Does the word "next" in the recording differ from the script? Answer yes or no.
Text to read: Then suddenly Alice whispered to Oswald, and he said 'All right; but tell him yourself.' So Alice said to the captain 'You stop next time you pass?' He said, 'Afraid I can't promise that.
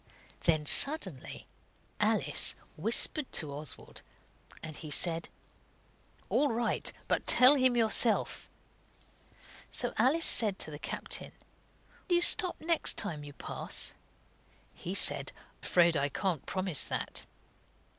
no